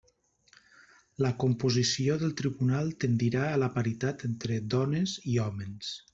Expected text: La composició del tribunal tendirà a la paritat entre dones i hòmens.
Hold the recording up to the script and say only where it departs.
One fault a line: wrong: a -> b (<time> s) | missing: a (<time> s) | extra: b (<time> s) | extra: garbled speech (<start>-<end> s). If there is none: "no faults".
no faults